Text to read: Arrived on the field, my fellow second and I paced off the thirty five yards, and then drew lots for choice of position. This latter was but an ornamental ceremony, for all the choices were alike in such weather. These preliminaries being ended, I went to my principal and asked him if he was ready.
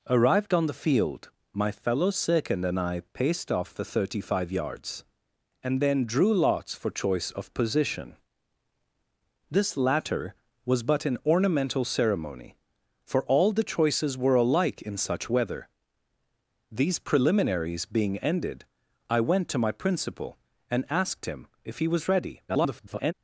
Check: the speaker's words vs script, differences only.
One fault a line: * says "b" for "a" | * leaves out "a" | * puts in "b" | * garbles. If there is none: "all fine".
* garbles